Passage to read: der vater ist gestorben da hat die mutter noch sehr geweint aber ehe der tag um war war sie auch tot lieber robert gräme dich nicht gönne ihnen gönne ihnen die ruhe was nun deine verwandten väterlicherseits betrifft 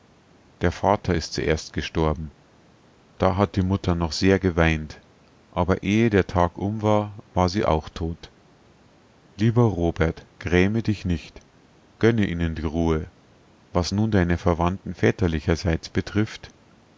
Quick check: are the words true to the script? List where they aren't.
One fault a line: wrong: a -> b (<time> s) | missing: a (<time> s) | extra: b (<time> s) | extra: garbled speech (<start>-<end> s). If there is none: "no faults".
extra: zuerst (1.3 s)
missing: gönne ihnen (12.5 s)